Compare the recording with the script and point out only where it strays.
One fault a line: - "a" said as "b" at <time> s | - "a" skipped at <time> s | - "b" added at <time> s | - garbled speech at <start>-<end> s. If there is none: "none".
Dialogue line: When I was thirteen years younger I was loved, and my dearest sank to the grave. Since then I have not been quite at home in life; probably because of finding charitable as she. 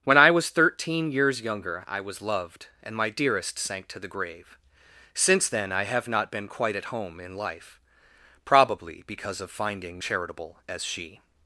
none